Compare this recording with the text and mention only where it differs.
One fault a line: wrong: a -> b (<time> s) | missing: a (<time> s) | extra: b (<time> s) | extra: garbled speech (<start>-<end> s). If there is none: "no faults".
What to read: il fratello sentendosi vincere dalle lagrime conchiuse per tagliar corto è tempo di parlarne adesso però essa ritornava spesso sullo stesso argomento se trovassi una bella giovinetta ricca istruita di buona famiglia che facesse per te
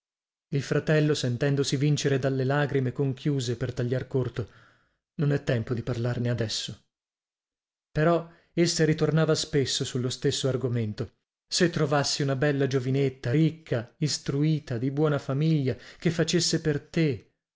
extra: non (5.2 s)